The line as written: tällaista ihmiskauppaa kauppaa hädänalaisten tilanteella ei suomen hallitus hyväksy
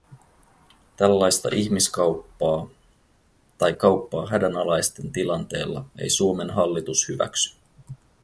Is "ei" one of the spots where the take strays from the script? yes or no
no